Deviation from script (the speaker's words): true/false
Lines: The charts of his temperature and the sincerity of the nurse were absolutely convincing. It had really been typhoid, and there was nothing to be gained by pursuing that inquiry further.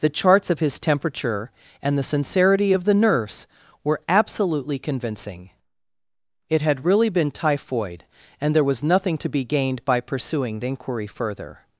true